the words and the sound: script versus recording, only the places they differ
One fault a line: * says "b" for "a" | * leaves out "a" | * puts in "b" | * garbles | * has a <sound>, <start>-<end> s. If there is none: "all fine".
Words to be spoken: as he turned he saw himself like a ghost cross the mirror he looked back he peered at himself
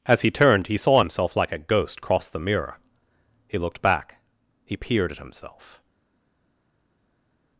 all fine